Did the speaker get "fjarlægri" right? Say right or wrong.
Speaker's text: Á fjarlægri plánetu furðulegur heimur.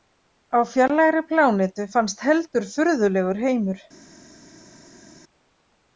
right